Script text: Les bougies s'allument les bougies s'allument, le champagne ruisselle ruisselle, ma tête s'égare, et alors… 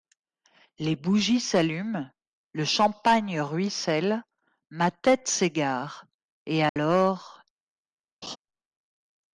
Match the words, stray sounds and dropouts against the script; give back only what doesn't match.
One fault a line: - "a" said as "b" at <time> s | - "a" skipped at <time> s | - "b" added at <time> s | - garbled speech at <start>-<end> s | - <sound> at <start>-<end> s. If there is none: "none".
- "les bougies s'allument" skipped at 2.1 s
- "ruisselle" skipped at 4.2 s
- dropout at 6.7-6.8 s
- laugh at 8.2-8.4 s